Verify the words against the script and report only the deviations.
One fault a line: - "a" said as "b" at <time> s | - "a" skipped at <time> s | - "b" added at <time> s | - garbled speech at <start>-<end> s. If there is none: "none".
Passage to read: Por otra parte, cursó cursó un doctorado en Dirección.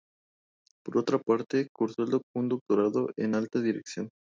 - "cursó" skipped at 2.1 s
- "Alta" added at 3.3 s